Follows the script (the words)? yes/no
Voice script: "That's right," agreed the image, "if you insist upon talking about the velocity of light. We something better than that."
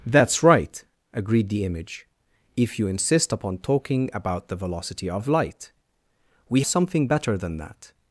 yes